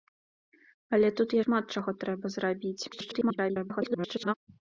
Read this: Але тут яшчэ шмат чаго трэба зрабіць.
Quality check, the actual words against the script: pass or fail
fail